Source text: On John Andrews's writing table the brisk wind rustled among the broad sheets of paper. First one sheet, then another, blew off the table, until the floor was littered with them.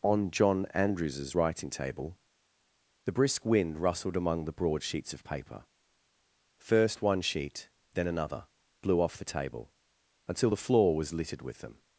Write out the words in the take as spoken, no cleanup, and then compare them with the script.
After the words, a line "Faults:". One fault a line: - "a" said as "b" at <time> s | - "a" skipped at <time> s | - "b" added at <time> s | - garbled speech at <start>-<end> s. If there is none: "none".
On John Andrews's writing table the brisk wind rustled among the broad sheets of paper. First one sheet, then another, blew off the table, until the floor was littered with them.
Faults:
none